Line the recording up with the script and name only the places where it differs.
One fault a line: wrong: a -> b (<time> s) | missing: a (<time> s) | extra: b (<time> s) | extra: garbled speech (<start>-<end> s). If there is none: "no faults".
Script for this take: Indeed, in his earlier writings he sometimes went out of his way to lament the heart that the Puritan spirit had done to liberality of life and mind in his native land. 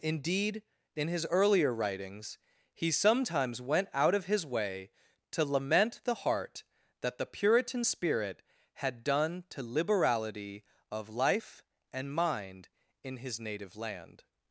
no faults